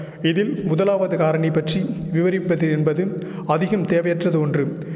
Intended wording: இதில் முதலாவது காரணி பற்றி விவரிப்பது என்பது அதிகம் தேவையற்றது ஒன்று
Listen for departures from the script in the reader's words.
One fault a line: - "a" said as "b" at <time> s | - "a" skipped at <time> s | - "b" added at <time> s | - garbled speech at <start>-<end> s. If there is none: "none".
none